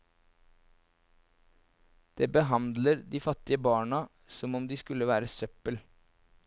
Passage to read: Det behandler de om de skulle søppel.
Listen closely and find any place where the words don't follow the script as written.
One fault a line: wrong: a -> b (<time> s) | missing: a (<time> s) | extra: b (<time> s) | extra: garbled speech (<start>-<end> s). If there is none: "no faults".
extra: fattige barna som (3.2 s)
extra: være (5.1 s)